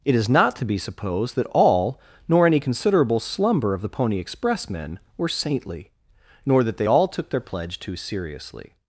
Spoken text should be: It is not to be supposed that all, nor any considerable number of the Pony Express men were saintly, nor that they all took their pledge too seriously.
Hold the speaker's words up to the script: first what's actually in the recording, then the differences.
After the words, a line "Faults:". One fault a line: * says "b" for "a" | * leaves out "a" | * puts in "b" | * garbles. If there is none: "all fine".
It is not to be supposed that all, nor any considerable slumber of the Pony Express men were saintly, nor that they all took their pledge too seriously.
Faults:
* says "slumber" for "number"